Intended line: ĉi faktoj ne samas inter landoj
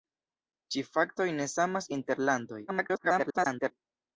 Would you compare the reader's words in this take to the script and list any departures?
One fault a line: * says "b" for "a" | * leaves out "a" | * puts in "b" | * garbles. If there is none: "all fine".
* garbles